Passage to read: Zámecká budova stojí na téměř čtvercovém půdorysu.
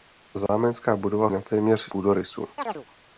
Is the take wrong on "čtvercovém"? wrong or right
wrong